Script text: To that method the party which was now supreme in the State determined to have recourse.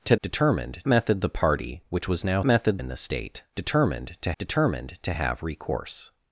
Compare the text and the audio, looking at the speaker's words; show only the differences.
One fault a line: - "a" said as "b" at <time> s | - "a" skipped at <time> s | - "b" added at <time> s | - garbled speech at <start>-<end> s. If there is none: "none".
- "that" said as "determined" at 0.2 s
- "supreme" said as "method" at 2.4 s
- "determined to" added at 4.4 s